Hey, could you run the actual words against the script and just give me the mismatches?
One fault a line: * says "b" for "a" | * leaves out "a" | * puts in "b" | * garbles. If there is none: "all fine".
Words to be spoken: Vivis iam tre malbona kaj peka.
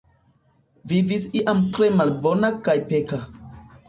all fine